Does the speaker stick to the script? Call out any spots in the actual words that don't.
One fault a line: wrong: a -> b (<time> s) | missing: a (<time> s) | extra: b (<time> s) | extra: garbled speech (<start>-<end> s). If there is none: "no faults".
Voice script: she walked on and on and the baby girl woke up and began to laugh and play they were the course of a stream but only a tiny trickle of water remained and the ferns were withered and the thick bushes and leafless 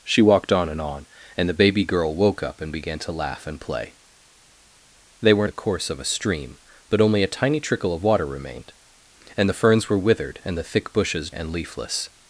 no faults